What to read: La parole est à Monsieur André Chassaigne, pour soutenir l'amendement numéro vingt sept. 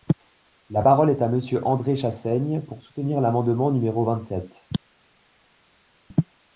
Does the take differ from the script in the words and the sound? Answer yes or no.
no